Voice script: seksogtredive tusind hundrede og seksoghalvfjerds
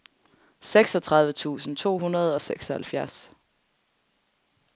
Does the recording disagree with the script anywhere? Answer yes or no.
yes